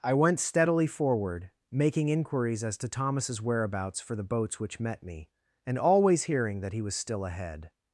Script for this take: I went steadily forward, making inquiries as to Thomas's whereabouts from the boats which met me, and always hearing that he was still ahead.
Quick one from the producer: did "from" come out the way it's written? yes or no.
no